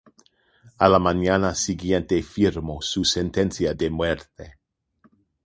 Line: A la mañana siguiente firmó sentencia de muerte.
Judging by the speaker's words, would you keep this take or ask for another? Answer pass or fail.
fail